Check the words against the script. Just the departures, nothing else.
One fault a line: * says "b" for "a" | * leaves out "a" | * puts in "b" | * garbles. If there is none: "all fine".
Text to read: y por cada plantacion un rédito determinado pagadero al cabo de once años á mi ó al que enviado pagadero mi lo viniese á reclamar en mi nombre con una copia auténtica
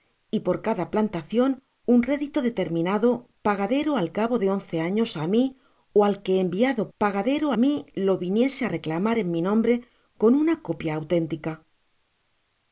all fine